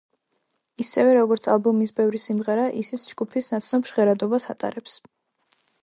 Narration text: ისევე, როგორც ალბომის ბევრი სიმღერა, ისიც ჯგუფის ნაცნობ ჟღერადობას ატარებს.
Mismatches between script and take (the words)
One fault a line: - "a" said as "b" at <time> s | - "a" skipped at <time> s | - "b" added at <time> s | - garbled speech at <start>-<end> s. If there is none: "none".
none